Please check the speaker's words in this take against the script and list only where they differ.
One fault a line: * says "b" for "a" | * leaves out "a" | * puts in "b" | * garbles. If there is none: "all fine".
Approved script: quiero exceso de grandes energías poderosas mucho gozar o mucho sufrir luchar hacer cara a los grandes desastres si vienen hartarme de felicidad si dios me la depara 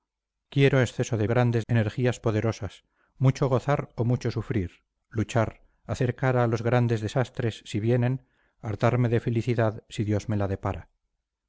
all fine